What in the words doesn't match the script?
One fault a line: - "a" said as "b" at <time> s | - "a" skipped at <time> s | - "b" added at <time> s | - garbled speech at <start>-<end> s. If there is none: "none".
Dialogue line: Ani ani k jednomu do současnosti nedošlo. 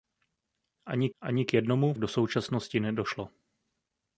none